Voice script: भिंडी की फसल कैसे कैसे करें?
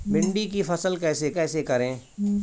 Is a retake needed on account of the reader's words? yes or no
no